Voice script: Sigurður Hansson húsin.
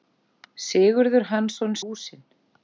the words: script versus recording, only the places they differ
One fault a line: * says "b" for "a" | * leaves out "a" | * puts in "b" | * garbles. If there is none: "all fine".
all fine